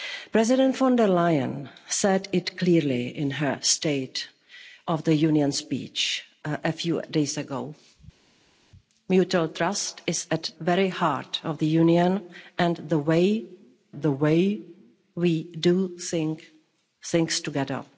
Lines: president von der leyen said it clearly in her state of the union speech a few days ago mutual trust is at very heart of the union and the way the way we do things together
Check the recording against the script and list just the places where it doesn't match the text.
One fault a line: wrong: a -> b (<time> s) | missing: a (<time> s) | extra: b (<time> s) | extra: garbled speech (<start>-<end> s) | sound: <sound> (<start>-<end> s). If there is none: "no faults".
no faults